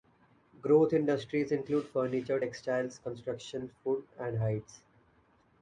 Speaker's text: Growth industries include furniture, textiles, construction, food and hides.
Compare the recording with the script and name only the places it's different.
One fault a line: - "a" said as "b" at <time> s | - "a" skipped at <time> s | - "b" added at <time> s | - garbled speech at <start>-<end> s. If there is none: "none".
none